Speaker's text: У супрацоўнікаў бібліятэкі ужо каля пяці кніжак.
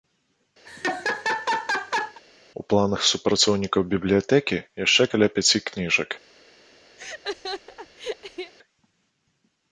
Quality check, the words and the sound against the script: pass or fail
fail